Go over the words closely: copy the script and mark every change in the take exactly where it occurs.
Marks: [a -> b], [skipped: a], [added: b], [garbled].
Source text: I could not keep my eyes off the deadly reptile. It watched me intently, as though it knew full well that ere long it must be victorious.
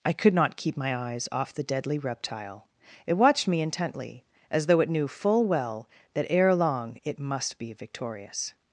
I could not keep my eyes off the deadly reptile. It watched me intently, as though it knew full well that ere long it must be victorious.